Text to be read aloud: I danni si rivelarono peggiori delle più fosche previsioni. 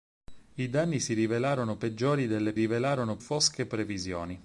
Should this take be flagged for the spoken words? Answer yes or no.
yes